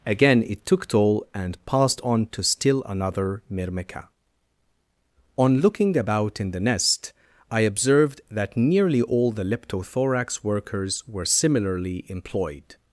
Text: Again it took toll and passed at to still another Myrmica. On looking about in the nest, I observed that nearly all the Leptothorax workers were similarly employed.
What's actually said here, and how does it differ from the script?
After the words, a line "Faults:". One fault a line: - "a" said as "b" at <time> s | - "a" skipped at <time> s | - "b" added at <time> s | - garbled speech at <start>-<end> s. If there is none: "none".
Again it took toll and passed on to still another Myrmica. On looking about in the nest, I observed that nearly all the Leptothorax workers were similarly employed.
Faults:
- "at" said as "on" at 2.0 s